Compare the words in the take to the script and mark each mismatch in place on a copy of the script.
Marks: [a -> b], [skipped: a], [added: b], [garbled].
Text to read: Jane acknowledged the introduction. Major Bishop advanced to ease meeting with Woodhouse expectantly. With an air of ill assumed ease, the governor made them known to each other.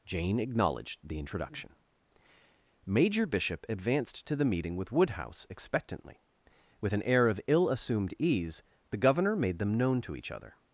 Jane acknowledged the introduction. Major Bishop advanced to [ease -> the] meeting with Woodhouse expectantly. With an air of ill assumed ease, the governor made them known to each other.